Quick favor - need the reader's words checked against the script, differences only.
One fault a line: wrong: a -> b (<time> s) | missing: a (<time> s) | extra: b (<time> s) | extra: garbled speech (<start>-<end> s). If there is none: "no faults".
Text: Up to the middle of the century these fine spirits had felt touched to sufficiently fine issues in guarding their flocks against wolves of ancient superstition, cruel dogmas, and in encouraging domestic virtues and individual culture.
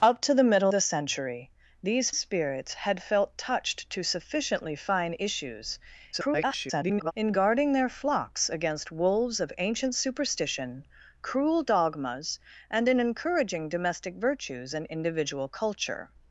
missing: of (0.7 s)
missing: fine (2.1 s)
extra: garbled speech (6.1-7.1 s)